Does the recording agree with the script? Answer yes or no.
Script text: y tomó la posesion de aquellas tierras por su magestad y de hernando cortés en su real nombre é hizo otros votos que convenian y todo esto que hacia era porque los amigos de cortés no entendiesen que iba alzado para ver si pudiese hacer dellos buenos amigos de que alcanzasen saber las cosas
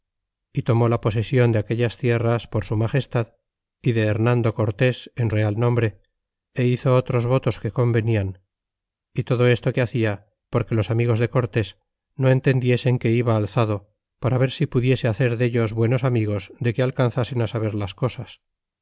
no